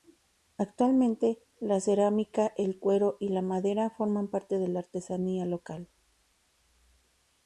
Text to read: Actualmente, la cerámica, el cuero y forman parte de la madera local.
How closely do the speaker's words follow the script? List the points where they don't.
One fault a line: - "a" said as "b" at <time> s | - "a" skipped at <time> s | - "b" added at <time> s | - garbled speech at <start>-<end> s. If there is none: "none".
- "la madera" added at 3.3 s
- "madera" said as "artesanía" at 4.8 s